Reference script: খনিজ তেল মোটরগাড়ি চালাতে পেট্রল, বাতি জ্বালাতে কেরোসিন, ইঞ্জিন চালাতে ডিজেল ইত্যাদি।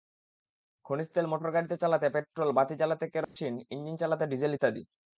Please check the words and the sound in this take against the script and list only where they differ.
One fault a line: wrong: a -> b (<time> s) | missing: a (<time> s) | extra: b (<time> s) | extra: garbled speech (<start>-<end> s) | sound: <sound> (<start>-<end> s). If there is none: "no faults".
sound: dropout (3.2-3.4 s)